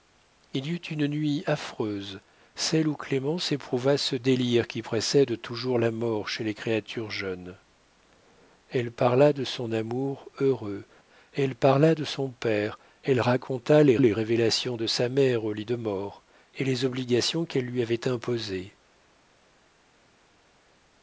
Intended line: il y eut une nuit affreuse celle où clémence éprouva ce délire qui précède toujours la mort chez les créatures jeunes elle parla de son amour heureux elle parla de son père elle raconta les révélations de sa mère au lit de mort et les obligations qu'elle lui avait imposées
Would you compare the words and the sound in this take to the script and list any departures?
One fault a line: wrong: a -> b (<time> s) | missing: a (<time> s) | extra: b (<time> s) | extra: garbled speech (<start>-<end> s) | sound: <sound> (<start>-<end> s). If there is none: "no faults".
extra: les (14.0 s)